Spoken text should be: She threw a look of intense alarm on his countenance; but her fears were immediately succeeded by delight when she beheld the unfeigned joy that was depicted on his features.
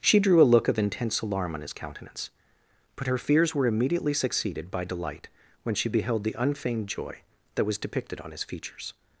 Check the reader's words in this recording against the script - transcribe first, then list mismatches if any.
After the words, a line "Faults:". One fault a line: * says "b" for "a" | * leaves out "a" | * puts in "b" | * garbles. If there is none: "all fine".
She drew a look of intense alarm on his countenance; but her fears were immediately succeeded by delight when she beheld the unfeigned joy that was depicted on his features.
Faults:
* says "drew" for "threw"